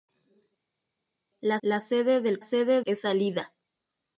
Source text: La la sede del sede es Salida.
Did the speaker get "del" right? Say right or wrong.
right